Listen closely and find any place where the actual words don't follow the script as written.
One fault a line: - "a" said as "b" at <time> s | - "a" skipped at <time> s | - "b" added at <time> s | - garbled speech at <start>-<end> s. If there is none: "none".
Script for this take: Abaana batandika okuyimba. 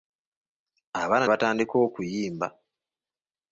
none